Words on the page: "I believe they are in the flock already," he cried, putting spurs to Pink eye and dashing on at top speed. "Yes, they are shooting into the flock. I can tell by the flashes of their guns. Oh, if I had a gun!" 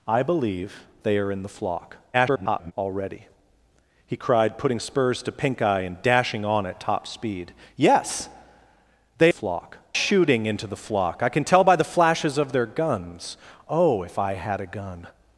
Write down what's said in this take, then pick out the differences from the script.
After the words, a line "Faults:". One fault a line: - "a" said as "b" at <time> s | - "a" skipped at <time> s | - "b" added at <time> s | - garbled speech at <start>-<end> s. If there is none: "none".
"I believe they are in the flock [garbled] already," he cried, putting spurs to Pink eye and dashing on at top speed. "Yes, they flock shooting into the flock. I can tell by the flashes of their guns. Oh, if I had a gun!"
Faults:
- garbled speech at 2.1-2.7 s
- "are" said as "flock" at 9.3 s